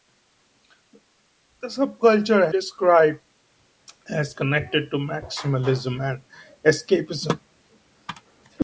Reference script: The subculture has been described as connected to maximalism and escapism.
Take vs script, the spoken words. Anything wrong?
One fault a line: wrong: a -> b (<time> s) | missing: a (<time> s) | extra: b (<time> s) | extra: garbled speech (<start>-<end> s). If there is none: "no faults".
missing: has been (2.5 s)